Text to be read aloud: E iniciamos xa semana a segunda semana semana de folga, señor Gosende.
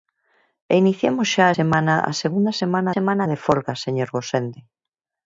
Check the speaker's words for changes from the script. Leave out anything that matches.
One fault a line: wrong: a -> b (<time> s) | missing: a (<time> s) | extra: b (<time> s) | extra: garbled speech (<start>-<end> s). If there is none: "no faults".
no faults